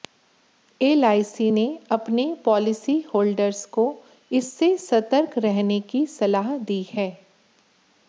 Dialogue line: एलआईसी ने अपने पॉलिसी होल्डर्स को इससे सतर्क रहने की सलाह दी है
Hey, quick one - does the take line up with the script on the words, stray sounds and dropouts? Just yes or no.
yes